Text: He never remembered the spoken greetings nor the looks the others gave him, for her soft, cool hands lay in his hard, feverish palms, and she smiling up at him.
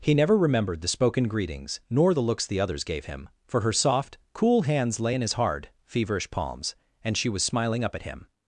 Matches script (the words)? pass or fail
fail